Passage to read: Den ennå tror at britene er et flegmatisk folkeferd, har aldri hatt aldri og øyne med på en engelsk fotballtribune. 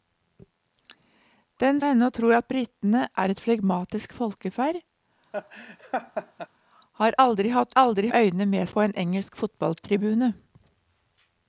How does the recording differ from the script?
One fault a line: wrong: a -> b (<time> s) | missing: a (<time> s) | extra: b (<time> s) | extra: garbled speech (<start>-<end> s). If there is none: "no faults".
no faults